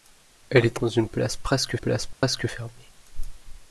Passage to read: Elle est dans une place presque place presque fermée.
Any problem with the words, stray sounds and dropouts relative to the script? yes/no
yes